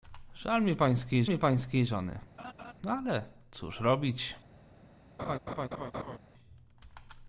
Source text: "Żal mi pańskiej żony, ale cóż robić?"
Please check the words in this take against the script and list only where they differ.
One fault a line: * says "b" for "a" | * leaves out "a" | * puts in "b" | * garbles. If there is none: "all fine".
* puts in "mi pańskiej"